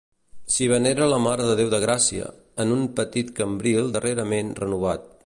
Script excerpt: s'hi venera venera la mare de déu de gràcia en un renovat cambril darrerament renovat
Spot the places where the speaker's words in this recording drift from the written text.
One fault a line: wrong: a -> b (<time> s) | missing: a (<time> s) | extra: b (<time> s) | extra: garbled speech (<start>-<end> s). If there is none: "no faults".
missing: venera (1.1 s)
wrong: renovat -> petit (3.0 s)